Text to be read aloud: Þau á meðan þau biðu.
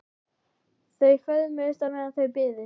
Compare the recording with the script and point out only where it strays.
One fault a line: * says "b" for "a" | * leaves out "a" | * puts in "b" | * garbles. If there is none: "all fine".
* puts in "föðmuðust"